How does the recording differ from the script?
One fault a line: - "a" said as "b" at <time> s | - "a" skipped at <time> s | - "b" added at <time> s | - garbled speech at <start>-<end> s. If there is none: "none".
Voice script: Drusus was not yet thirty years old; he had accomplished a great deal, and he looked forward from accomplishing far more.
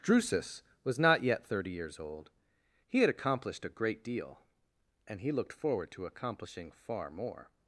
- "from" said as "to" at 5.9 s